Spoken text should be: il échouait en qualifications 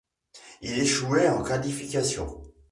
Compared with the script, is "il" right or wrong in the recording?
right